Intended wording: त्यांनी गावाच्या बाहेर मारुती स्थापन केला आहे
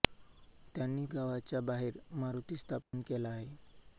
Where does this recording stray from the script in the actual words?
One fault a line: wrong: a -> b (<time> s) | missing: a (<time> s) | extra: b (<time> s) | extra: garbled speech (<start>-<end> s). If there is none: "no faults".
no faults